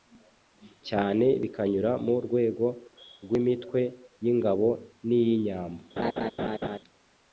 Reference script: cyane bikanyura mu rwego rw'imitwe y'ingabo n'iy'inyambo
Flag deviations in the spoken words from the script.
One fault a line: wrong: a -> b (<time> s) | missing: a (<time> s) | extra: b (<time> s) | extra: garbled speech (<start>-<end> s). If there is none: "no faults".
no faults